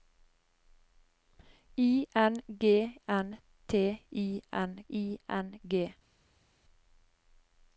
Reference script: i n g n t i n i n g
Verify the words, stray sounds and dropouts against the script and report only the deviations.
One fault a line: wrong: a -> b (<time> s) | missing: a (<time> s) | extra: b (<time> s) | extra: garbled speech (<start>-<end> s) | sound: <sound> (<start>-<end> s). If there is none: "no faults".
no faults